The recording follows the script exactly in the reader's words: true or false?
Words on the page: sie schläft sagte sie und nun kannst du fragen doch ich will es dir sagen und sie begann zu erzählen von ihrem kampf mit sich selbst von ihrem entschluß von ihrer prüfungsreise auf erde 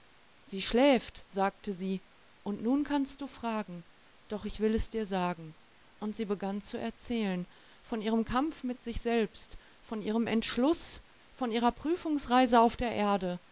false